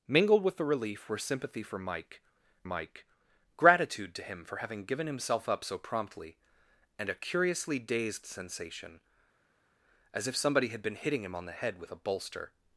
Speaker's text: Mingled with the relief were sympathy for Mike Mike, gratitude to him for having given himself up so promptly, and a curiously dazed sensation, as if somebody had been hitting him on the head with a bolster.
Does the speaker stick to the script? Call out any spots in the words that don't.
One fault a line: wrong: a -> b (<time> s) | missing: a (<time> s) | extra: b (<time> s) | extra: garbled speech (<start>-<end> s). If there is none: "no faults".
no faults